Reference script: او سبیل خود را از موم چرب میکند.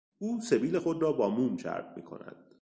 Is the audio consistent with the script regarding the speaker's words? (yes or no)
no